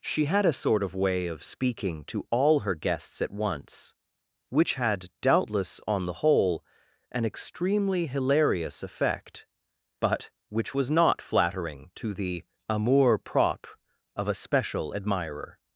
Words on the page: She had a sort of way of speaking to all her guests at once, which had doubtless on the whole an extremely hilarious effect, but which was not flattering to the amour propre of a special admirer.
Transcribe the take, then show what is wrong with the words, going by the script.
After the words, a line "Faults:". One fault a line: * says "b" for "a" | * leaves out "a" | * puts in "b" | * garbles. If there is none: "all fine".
She had a sort of way of speaking to all her guests at once, which had doubtless on the whole an extremely hilarious effect, but which was not flattering to the amour propre of a special admirer.
Faults:
all fine